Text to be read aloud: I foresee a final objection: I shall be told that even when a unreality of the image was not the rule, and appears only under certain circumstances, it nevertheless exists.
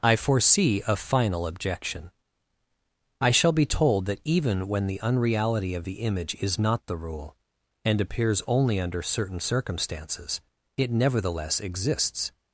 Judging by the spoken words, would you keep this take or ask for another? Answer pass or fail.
fail